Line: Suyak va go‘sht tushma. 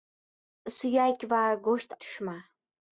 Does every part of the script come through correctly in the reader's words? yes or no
yes